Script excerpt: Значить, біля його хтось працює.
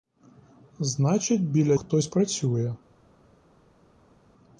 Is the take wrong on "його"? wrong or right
wrong